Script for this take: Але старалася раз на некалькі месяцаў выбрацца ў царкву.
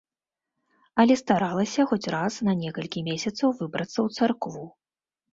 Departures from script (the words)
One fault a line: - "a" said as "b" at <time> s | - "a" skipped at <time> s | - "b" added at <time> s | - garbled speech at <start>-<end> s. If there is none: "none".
- "хоць" added at 1.9 s